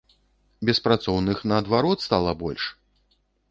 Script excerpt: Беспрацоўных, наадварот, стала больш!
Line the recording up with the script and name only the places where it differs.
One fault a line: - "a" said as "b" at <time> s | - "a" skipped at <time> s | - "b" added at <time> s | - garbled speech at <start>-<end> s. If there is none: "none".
none